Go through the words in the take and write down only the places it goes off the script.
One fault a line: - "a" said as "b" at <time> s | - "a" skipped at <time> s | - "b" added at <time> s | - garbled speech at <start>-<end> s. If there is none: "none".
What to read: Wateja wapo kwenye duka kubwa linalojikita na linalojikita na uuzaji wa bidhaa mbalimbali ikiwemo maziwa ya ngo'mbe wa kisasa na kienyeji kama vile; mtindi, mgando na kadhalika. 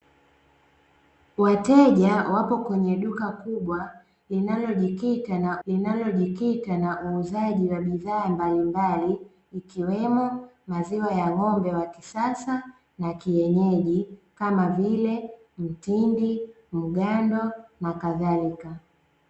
none